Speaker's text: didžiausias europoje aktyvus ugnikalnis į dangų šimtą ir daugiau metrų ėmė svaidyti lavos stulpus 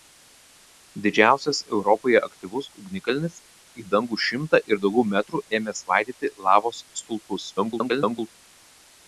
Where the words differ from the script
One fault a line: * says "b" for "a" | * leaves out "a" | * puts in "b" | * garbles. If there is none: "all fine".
* garbles